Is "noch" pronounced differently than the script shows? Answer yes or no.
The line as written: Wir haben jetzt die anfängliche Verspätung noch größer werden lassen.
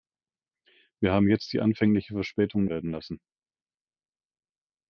yes